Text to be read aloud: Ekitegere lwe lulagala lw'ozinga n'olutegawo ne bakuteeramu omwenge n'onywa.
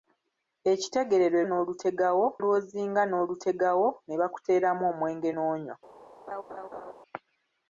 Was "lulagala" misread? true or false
true